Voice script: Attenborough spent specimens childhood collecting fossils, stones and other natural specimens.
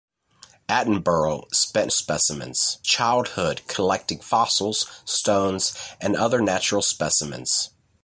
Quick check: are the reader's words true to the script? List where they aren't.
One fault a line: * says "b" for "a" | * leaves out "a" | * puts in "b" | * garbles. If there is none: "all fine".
all fine